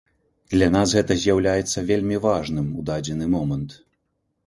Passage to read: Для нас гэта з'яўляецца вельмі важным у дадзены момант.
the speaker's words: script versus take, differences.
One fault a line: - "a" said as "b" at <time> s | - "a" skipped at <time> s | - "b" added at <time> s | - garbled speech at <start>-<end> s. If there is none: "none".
none